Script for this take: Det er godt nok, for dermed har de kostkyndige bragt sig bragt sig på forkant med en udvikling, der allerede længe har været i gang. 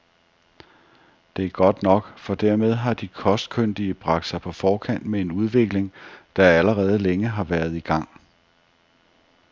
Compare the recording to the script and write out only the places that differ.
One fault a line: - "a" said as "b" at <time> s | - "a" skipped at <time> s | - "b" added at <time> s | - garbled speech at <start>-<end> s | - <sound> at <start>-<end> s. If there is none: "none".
- "bragt sig" skipped at 4.4 s